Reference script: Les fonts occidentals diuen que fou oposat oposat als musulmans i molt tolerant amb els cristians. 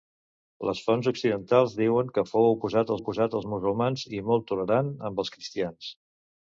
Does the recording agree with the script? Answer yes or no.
yes